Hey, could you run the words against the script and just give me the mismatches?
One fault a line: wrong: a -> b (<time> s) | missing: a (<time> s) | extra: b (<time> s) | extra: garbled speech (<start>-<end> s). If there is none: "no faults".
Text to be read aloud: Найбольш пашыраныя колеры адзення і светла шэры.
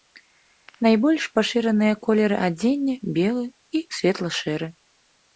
extra: белы (3.2 s)